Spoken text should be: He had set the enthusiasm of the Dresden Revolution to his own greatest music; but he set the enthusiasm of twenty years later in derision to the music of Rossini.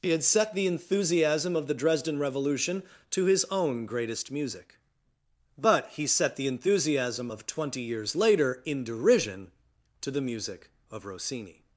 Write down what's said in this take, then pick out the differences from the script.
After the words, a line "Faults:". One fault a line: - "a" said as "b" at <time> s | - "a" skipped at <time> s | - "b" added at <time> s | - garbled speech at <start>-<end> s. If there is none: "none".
He had set the enthusiasm of the Dresden Revolution to his own greatest music; but he set the enthusiasm of twenty years later in derision to the music of Rossini.
Faults:
none